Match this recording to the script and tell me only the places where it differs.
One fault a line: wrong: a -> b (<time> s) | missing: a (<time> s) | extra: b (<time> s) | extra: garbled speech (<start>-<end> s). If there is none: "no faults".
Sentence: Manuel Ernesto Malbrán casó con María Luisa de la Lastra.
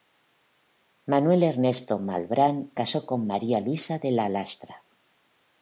no faults